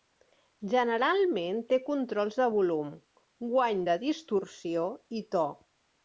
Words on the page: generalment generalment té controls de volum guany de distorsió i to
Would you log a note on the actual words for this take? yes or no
yes